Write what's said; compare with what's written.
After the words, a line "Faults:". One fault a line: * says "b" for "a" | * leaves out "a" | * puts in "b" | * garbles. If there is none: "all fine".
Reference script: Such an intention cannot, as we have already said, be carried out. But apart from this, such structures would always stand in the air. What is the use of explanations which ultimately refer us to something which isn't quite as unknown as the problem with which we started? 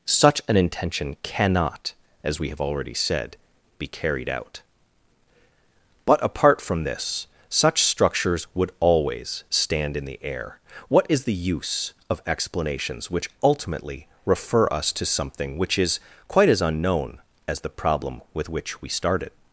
Such an intention cannot, as we have already said, be carried out. But apart from this, such structures would always stand in the air. What is the use of explanations which ultimately refer us to something which is quite as unknown as the problem with which we started?
Faults:
* says "is" for "isn't"